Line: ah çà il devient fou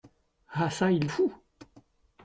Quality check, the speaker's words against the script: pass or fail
fail